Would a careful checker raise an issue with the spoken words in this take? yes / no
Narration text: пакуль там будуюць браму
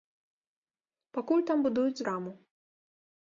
no